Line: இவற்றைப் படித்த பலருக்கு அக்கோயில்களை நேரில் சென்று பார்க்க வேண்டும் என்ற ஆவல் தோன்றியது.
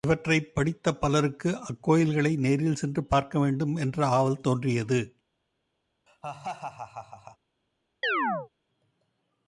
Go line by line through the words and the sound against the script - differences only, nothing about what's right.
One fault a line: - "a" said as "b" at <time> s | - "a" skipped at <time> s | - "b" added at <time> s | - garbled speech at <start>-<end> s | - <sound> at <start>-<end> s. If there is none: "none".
- laugh at 6.1-7.4 s
- chirp at 8.0-8.5 s